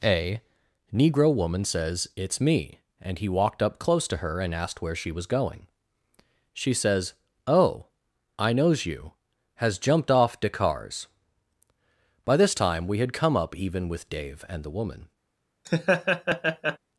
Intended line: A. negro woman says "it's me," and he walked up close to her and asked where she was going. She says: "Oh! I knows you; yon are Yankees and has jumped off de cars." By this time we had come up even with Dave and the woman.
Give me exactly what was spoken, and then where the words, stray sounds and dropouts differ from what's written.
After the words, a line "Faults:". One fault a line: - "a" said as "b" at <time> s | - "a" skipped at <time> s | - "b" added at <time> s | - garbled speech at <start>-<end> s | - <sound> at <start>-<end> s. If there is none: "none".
A. negro woman says "it's me," and he walked up close to her and asked where she was going. She says: "Oh! I knows you; has jumped off de cars." By this time we had come up even with Dave and the woman.
Faults:
- "yon are Yankees and" skipped at 9.1 s
- laugh at 15.6-16.8 s